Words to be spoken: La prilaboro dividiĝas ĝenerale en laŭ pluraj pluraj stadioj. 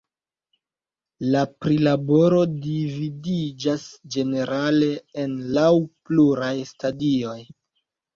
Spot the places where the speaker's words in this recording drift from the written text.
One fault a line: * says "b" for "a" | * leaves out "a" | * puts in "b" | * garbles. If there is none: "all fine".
* leaves out "pluraj"